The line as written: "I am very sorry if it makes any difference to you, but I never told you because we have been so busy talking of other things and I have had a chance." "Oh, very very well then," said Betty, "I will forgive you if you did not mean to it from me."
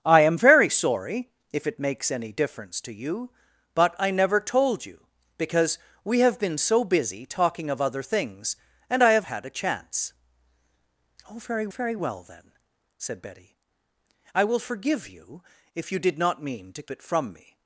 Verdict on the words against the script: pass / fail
pass